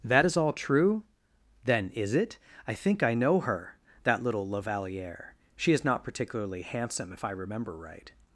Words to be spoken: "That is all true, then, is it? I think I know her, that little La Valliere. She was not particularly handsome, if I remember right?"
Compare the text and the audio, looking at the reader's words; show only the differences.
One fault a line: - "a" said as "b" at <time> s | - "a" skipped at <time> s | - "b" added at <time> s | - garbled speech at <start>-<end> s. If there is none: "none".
- "was" said as "is" at 5.7 s